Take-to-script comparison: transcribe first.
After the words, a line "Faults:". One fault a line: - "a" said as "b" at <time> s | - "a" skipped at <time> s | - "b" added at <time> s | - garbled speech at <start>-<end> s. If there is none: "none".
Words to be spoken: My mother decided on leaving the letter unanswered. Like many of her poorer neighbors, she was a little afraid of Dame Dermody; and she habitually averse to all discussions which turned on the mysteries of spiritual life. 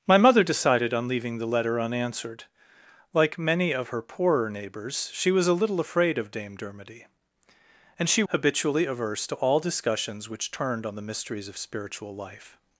My mother decided on leaving the letter unanswered. Like many of her poorer neighbors, she was a little afraid of Dame Dermody; and she habitually averse to all discussions which turned on the mysteries of spiritual life.
Faults:
none